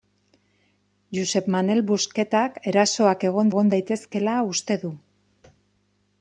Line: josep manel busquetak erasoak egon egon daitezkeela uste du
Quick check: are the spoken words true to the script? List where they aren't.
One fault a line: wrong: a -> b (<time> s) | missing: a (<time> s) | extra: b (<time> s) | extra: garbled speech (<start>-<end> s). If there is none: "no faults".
no faults